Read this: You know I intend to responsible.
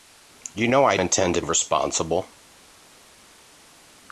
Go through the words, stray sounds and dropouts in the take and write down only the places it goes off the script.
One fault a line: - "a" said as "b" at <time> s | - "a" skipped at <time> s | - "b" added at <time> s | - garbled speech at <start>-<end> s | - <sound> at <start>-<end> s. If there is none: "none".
none